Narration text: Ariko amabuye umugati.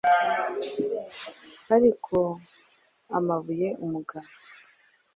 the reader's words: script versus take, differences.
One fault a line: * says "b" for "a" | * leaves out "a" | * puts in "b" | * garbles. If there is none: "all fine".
all fine